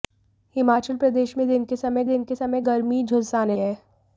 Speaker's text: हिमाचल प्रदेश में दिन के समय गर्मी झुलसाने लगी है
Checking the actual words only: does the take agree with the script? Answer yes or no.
no